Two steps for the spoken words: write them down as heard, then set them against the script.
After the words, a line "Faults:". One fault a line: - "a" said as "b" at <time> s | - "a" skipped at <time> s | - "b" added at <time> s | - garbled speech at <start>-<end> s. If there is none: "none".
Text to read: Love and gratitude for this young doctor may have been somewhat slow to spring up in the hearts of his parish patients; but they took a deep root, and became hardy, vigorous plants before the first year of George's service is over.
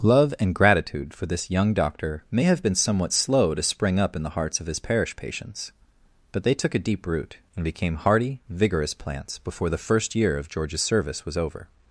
Love and gratitude for this young doctor may have been somewhat slow to spring up in the hearts of his parish patients; but they took a deep root, and became hardy, vigorous plants before the first year of George's service was over.
Faults:
- "is" said as "was" at 11.2 s